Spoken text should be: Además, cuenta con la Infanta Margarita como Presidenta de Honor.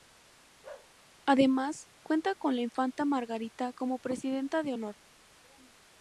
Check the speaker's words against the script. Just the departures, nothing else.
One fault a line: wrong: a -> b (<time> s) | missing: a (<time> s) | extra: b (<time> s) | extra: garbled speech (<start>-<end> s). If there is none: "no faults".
no faults